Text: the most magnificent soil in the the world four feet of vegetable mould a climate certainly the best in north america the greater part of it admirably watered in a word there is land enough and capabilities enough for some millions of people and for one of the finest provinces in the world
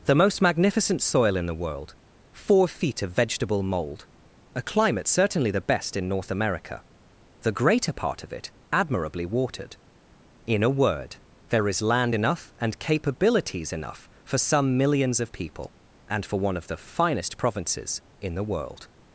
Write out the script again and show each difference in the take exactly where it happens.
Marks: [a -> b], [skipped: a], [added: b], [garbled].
the most magnificent soil in the [skipped: the] world four feet of vegetable mould a climate certainly the best in north america the greater part of it admirably watered in a word there is land enough and capabilities enough for some millions of people and for one of the finest provinces in the world